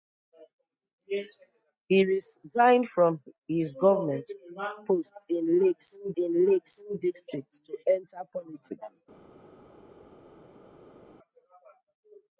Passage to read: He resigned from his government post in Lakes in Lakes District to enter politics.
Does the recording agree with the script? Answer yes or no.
yes